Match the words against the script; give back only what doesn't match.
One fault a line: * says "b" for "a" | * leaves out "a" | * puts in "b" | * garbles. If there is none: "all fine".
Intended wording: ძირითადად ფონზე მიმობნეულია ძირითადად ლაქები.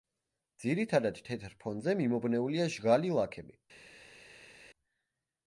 * puts in "თეთრ"
* says "ჟღალი" for "ძირითადად"